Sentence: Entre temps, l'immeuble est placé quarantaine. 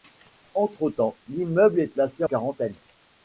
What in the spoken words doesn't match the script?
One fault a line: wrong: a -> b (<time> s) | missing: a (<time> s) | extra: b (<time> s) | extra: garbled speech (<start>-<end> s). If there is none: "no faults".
no faults